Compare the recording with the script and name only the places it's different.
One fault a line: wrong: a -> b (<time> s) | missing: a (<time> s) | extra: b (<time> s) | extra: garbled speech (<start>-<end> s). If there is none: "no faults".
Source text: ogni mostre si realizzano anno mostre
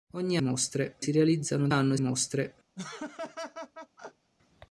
no faults